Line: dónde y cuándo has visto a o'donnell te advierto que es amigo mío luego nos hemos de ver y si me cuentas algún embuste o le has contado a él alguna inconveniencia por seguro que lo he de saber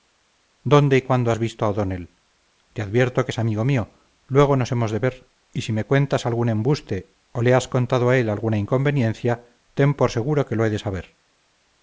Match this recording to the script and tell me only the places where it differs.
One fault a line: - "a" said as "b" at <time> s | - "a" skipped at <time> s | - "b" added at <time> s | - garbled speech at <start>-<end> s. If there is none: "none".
- "ten" added at 9.7 s